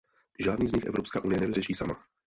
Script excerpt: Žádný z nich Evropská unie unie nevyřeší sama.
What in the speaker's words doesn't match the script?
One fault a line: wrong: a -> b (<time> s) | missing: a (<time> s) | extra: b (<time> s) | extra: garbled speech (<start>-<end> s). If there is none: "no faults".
missing: unie (1.4 s)